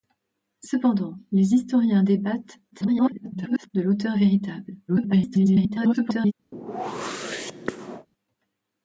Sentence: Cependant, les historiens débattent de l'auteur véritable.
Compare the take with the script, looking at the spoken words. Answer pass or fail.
fail